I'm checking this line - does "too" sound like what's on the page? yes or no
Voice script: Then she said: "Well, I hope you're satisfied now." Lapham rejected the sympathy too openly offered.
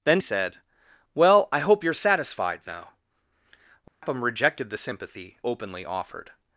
no